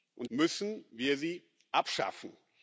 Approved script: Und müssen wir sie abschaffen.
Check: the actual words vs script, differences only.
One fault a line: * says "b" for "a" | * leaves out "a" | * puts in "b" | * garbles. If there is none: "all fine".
all fine